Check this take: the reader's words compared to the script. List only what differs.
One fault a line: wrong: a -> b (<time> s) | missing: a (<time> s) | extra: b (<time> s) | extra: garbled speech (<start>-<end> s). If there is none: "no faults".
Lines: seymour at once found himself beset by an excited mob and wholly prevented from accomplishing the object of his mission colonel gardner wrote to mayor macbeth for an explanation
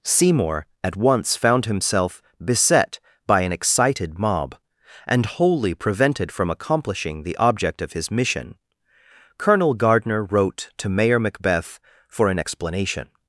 no faults